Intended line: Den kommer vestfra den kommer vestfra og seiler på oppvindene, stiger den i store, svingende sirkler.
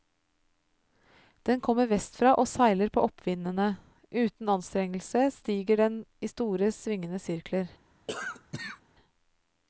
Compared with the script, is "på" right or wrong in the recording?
right